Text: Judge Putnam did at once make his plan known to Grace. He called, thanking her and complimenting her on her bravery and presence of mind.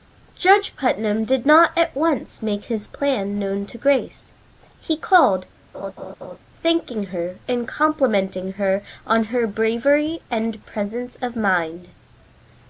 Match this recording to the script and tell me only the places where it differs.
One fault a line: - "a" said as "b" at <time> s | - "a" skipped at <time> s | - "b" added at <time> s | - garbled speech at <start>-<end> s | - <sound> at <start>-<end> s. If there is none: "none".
- "not" added at 1.4 s
- laugh at 5.7-6.4 s